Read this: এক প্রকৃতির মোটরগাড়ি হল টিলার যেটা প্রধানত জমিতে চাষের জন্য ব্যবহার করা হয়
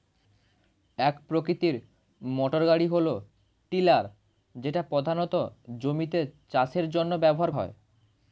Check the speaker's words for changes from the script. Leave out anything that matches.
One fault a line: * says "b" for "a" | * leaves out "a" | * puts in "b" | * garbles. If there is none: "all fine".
* leaves out "করা"